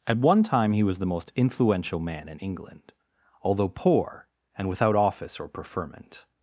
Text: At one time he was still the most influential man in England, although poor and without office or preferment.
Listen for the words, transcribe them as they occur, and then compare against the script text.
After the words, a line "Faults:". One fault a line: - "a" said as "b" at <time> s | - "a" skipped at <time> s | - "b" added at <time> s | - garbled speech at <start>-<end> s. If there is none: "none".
At one time he was the most influential man in England, although poor and without office or preferment.
Faults:
- "still" skipped at 1.0 s